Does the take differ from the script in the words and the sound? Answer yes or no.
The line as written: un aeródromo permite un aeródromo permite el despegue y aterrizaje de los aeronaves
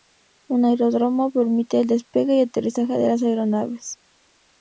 yes